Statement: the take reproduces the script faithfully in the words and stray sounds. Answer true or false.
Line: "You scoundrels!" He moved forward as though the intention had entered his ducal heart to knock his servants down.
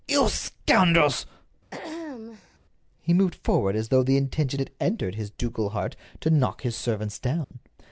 false